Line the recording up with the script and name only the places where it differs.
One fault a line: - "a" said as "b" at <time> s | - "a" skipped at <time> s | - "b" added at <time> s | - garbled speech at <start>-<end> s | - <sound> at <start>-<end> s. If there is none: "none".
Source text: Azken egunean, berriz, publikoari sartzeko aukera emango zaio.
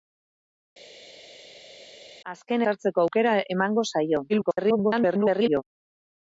- "egunean berriz publikoari" skipped at 2.6 s
- garbled speech at 4.3-5.6 s